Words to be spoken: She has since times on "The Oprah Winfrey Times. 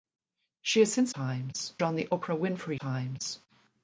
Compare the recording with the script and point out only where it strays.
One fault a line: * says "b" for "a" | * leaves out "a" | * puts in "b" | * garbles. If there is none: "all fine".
all fine